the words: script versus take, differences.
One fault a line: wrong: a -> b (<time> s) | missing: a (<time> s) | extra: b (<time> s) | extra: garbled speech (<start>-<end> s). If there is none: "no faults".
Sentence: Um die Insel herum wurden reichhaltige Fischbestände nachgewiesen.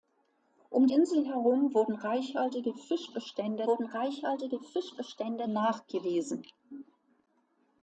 missing: die (0.9 s)
extra: wurden reichhaltige Fischbestände (3.6 s)